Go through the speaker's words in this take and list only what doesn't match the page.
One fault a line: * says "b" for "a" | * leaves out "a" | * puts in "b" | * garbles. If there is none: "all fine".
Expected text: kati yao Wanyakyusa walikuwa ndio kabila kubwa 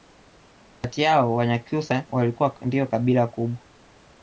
all fine